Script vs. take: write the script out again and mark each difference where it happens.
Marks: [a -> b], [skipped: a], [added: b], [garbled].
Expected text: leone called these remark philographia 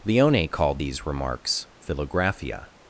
leone called these [remark -> remarks] philographia